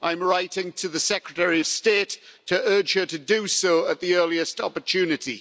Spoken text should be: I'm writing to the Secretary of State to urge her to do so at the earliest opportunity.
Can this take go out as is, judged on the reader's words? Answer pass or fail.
pass